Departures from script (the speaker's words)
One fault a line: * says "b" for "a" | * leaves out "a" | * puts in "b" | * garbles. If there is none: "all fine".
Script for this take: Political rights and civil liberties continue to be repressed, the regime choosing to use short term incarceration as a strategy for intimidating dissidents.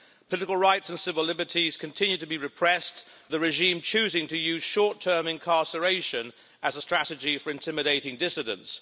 all fine